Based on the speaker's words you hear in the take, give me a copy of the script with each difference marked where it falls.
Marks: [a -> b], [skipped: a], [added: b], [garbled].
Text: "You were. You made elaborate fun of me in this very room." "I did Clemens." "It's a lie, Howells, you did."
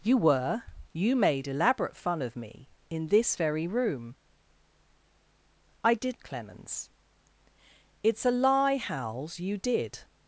"You were. You made elaborate fun of me in this very room." "I did Clemens." "It's a lie, Howells, you did."